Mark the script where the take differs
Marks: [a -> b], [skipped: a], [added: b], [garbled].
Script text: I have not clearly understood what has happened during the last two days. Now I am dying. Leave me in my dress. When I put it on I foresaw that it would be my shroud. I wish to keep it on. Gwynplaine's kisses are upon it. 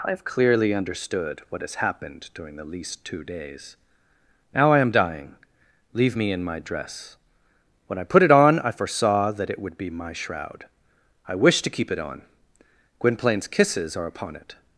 I have [skipped: not] clearly understood what has happened during the [last -> least] two days. Now I am dying. Leave me in my dress. When I put it on I foresaw that it would be my shroud. I wish to keep it on. Gwynplaine's kisses are upon it.